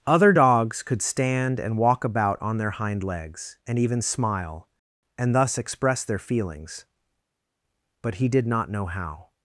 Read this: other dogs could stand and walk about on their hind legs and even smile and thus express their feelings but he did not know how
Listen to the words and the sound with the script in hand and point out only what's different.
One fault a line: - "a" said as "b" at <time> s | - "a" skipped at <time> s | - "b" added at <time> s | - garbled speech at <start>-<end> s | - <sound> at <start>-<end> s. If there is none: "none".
none